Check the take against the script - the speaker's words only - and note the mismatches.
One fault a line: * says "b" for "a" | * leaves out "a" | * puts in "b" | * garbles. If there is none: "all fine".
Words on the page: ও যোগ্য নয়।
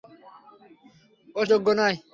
all fine